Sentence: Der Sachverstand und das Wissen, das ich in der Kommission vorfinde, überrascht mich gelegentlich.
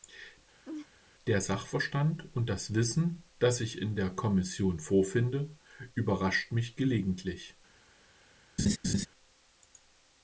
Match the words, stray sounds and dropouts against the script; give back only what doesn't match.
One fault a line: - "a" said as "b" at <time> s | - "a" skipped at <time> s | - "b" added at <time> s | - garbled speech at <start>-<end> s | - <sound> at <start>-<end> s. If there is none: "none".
- laugh at 0.6-0.9 s
- laugh at 8.6-9.1 s